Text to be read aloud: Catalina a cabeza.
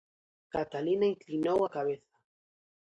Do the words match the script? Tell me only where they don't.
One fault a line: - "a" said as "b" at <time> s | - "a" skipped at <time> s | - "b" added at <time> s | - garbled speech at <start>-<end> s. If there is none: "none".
- "inclinou" added at 1.1 s